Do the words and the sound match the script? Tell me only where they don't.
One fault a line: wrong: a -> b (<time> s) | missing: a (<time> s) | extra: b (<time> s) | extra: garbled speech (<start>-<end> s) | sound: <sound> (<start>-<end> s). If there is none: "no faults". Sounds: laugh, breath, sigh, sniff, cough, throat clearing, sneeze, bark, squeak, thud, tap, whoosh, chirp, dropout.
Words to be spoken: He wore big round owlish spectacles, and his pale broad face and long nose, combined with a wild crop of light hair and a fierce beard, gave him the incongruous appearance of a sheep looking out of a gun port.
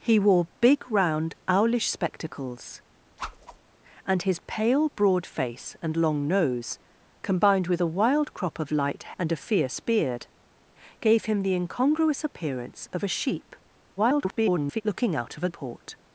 sound: whoosh (3.2-3.6 s)
missing: hair (9.2 s)
extra: garbled speech (14.0-14.8 s)
missing: gun (15.5 s)